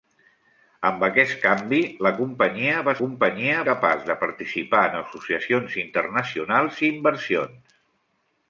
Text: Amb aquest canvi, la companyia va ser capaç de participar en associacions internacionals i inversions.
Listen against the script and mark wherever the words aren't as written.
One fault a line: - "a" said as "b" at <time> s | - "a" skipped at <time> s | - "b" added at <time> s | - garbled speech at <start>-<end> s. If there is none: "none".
- "ser" said as "companyia" at 3.0 s